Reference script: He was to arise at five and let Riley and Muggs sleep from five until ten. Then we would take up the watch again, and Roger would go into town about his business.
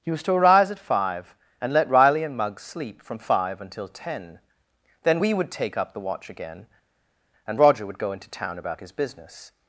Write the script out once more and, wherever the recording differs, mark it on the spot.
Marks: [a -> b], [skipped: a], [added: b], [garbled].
He was to arise at five and let Riley and Muggs sleep from five until ten. Then we would take up the watch again, and Roger would go into town about his business.